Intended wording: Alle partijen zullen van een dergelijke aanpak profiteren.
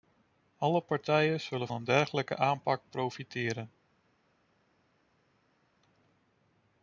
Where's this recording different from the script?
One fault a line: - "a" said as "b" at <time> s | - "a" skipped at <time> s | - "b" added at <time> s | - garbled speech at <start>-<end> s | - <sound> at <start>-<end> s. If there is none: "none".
- "van" skipped at 1.7 s